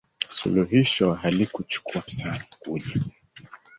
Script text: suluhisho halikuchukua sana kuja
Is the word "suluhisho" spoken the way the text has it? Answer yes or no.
yes